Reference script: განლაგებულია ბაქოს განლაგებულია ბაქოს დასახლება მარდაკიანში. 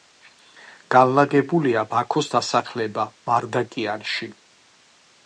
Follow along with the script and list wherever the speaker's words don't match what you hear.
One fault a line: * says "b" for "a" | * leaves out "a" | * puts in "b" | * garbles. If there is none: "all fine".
* leaves out "განლაგებულია ბაქოს"